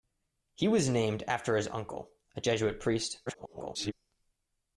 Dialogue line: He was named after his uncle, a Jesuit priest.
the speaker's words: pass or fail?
fail